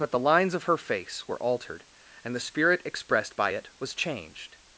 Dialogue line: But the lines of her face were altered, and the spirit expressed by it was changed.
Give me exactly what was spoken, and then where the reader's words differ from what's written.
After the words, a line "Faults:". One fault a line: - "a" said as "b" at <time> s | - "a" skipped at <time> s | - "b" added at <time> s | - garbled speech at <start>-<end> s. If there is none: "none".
But the lines of her face were altered, and the spirit expressed by it was changed.
Faults:
none